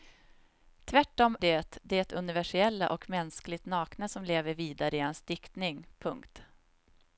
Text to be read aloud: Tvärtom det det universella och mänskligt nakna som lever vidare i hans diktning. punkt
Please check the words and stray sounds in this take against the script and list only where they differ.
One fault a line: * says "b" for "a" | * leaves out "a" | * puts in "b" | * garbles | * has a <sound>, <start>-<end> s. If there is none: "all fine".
all fine